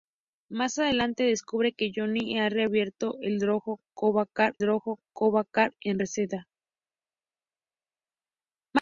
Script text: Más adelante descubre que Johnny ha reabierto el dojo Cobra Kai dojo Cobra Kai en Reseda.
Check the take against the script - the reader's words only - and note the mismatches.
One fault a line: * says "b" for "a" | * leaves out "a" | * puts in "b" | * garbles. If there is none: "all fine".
all fine